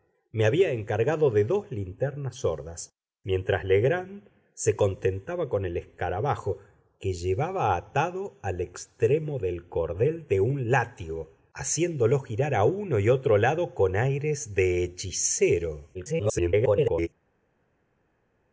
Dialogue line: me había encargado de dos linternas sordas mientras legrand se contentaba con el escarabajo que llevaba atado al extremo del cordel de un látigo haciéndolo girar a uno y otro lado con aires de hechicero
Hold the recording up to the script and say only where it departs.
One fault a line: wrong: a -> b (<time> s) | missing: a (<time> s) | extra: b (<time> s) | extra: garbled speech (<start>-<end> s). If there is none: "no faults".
extra: garbled speech (15.9-17.1 s)